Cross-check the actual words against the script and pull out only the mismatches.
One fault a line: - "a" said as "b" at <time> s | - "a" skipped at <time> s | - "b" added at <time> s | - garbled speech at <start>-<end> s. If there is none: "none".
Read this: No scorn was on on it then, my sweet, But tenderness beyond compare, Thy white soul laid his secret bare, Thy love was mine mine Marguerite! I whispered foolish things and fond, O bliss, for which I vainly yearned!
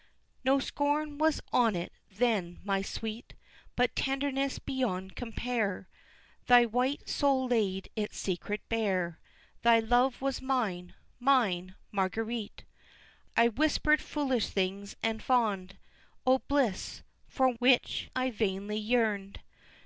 - "on" skipped at 1.8 s
- "his" said as "its" at 8.0 s